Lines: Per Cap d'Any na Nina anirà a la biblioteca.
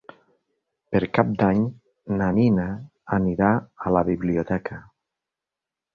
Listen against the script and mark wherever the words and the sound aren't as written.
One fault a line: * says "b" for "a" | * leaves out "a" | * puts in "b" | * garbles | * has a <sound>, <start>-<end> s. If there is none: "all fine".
all fine